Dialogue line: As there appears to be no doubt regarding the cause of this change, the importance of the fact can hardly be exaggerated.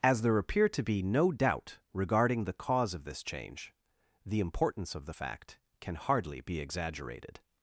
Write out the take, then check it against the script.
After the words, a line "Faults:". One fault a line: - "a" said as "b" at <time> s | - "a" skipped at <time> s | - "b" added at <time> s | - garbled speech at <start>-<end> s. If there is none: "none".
As there appear to be no doubt regarding the cause of this change, the importance of the fact can hardly be exaggerated.
Faults:
- "appears" said as "appear" at 0.4 s